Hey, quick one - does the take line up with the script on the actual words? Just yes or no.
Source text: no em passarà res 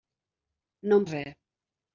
no